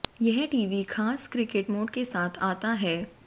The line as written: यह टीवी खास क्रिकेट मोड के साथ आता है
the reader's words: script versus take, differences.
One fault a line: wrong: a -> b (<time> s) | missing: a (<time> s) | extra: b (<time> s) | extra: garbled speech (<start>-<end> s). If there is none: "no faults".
no faults